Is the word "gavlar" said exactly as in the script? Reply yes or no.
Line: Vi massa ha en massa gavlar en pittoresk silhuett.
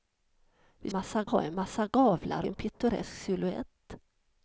yes